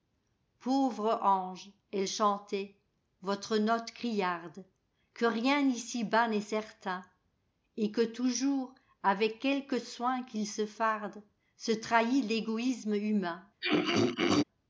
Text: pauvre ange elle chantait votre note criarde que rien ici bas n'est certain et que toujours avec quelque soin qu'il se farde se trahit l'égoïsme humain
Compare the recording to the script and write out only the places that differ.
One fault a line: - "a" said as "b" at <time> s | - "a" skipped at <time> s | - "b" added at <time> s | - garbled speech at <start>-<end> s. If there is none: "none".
none